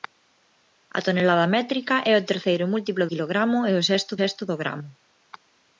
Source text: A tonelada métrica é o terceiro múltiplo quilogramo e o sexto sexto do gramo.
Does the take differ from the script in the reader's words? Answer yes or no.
no